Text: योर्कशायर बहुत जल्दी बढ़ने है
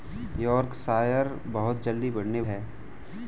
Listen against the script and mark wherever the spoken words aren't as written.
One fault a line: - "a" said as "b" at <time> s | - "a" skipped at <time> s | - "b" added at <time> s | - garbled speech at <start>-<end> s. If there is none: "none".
none